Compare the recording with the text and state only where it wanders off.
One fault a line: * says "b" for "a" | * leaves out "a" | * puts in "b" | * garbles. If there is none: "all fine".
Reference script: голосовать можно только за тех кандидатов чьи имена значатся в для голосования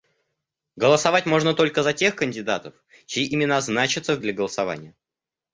all fine